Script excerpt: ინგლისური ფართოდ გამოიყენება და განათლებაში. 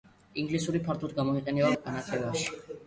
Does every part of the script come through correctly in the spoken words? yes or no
yes